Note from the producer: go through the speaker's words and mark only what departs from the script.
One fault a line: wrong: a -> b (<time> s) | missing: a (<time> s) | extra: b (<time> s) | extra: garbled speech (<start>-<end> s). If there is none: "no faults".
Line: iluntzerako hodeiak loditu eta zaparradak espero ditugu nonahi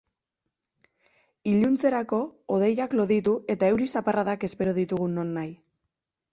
extra: euri (3.8 s)